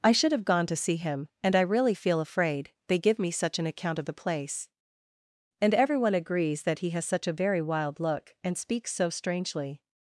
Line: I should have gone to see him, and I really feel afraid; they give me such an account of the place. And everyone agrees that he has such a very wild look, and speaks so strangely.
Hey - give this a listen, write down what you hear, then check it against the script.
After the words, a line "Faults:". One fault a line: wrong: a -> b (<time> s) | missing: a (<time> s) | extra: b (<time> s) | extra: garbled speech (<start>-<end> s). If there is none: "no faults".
I should have gone to see him, and I really feel afraid; they give me such an account of the place. And everyone agrees that he has such a very wild look, and speaks so strangely.
Faults:
no faults